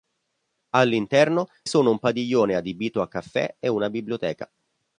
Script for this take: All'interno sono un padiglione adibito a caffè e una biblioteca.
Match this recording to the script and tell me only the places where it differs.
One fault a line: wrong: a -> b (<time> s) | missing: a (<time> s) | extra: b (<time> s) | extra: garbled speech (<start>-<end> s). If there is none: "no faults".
no faults